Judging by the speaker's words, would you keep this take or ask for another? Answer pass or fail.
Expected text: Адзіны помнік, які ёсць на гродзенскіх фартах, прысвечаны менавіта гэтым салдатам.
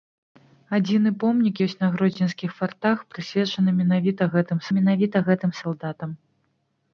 fail